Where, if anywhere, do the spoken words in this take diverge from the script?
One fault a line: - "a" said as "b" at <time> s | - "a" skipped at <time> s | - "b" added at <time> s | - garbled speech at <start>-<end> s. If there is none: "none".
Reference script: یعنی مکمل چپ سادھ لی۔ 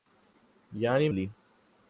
- "مکمل چپ سادھ" skipped at 1.1 s